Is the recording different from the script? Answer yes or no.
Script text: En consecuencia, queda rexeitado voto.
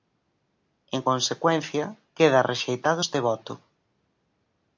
yes